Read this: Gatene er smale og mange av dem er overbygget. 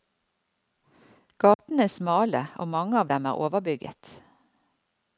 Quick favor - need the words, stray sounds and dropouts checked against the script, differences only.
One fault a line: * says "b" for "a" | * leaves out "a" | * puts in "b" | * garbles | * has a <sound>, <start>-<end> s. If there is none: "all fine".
* has a dropout, 1.5-1.6 s